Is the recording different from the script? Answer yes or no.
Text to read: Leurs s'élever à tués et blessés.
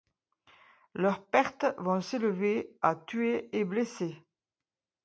yes